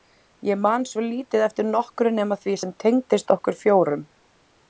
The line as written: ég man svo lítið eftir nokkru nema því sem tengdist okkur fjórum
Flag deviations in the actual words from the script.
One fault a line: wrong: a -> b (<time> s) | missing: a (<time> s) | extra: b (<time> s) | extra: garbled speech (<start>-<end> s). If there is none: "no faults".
no faults